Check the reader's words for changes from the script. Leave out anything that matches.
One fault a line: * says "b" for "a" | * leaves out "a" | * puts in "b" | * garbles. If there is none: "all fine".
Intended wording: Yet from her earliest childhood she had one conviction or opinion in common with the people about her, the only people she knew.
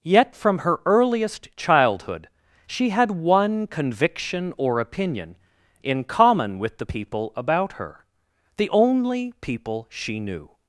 all fine